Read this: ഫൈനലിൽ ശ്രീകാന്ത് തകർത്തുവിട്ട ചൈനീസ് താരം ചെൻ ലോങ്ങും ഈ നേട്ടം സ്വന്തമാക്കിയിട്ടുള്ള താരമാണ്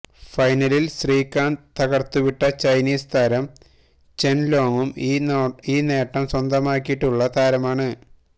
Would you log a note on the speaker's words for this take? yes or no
no